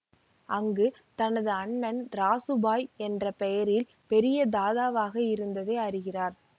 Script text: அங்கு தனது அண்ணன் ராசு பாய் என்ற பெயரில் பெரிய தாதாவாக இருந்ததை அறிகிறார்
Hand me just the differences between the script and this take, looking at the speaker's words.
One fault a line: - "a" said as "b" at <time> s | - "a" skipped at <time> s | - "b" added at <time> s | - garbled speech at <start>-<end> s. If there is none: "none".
none